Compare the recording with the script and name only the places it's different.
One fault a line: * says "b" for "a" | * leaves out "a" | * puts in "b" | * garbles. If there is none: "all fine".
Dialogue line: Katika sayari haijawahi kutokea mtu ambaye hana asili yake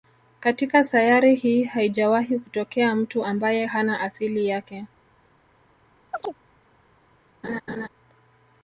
* puts in "hii"